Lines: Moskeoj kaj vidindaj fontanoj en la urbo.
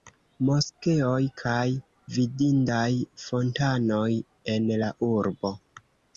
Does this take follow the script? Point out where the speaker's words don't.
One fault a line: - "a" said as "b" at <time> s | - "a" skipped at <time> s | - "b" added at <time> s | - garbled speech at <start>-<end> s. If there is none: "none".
none